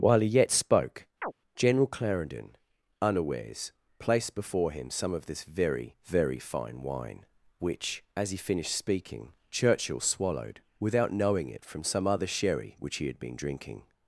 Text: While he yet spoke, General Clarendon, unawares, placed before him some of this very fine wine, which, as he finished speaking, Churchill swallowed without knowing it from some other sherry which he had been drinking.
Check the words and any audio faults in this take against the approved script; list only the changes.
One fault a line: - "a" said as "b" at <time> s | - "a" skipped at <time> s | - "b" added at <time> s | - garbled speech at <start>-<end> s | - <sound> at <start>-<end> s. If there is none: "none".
- chirp at 1.2-1.3 s
- "very" added at 6.0 s